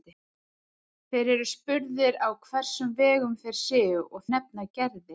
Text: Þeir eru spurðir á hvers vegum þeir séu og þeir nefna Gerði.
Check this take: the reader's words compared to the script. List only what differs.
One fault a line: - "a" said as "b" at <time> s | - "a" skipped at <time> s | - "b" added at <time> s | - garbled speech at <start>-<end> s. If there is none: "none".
- "þeir" skipped at 4.2 s